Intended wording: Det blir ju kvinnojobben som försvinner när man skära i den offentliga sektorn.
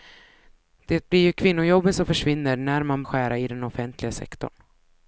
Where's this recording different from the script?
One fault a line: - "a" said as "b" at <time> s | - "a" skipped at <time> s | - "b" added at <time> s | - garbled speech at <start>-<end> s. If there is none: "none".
none